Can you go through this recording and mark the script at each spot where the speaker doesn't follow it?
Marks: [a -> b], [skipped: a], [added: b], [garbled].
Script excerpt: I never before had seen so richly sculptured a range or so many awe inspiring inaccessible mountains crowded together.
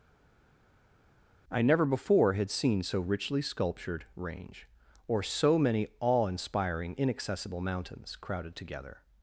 I never before had seen so richly sculptured [skipped: a] range or so many awe inspiring inaccessible mountains crowded together.